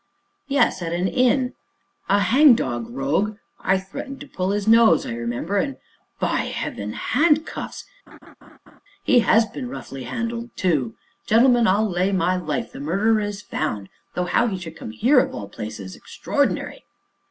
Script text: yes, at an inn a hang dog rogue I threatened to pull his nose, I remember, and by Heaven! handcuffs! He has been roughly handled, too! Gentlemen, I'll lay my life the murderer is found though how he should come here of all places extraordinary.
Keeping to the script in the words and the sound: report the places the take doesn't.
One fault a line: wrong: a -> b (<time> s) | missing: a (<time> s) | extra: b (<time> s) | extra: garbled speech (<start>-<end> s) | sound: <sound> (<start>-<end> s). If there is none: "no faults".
sound: laugh (8.1-8.8 s)